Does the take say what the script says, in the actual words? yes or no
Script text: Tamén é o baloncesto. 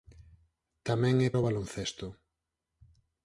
yes